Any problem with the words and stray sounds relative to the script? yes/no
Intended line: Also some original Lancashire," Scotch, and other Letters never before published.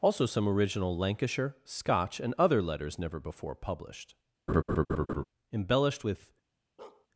yes